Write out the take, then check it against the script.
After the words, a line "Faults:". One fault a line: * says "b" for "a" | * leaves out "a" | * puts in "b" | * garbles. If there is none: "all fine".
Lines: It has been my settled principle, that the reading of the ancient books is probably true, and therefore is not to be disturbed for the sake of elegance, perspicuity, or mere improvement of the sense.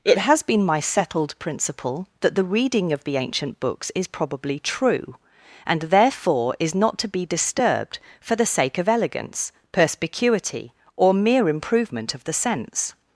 It has been my settled principle, that the reading of the ancient books is probably true, and therefore is not to be disturbed for the sake of elegance, perspicuity, or mere improvement of the sense.
Faults:
all fine